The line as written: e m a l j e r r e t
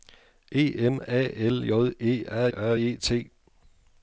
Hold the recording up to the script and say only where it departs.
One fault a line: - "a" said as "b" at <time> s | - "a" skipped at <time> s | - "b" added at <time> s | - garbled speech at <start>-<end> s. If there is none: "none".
none